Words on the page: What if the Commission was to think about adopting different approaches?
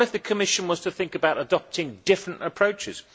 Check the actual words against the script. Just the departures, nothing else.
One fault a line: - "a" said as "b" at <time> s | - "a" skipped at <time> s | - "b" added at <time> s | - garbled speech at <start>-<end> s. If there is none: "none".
none